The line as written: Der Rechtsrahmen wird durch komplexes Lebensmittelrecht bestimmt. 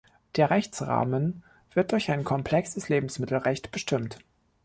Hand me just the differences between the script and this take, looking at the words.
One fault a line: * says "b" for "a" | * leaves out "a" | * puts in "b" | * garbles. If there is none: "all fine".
* puts in "ein"